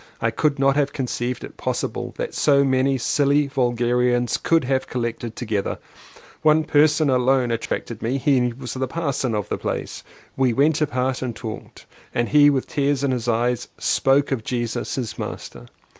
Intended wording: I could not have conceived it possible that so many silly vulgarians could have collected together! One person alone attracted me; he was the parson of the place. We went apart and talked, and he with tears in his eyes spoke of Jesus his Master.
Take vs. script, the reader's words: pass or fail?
pass